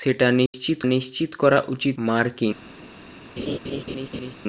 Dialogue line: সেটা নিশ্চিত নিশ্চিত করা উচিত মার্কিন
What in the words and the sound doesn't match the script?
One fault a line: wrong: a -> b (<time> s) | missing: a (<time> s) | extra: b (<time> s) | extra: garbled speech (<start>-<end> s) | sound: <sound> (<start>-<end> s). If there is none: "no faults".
sound: dropout (0.5-0.5 s)
sound: laugh (3.4-4.3 s)